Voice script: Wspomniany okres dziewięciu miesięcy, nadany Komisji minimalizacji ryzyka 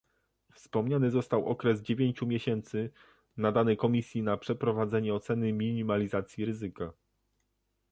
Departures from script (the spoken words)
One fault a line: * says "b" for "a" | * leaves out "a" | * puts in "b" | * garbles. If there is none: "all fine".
* puts in "został"
* puts in "na przeprowadzenie oceny"